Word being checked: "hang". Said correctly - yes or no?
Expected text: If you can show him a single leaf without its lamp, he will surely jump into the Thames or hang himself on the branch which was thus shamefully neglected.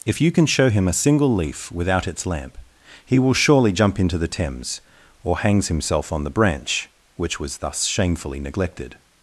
no